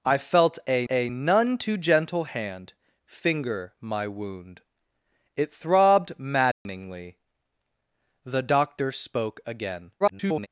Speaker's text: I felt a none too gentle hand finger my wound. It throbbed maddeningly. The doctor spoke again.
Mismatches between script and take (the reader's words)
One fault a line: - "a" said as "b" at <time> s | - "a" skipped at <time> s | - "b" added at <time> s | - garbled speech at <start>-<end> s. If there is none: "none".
- "a" added at 0.9 s
- garbled speech at 10.0-10.5 s